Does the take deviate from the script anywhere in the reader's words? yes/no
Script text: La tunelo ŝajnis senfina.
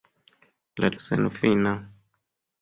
yes